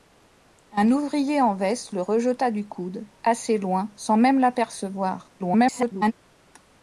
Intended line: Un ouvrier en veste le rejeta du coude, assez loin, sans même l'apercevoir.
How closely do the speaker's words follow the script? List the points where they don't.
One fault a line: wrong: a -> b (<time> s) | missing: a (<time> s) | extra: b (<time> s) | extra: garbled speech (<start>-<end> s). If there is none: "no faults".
extra: garbled speech (5.4-6.1 s)